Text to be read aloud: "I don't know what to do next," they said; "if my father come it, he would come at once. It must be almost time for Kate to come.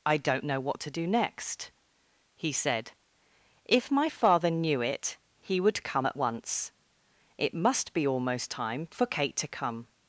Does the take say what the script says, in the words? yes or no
no